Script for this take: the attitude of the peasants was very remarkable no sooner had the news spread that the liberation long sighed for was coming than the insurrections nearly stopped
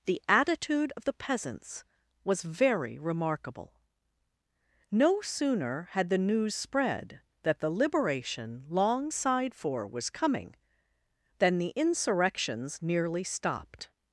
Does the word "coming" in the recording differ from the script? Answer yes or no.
no